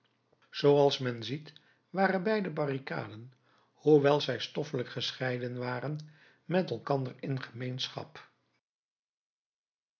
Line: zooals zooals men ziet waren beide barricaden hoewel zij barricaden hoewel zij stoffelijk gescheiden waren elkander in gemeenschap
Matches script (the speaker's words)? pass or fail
fail